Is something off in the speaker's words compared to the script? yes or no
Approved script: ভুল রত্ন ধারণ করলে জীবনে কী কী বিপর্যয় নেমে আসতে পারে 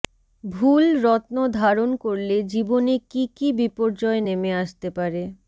no